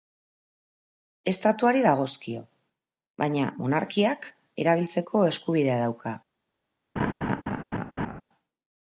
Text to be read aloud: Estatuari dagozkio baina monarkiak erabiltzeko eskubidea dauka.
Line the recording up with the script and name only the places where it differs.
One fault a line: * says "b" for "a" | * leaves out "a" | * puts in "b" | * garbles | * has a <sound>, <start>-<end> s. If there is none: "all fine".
* has a laugh, 7.0-8.2 s